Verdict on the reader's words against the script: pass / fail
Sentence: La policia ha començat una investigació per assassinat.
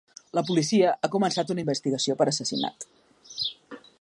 pass